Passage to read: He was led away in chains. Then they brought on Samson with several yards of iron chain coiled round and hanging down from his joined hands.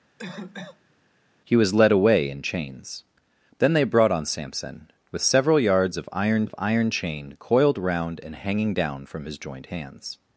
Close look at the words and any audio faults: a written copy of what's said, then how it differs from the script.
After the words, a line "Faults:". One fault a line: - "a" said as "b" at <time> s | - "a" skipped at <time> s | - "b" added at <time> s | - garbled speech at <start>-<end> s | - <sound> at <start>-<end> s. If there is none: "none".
He was led away in chains. Then they brought on Samson with several yards of iron of iron chain coiled round and hanging down from his joined hands.
Faults:
- cough at 0.2-0.9 s
- "of iron" added at 6.4 s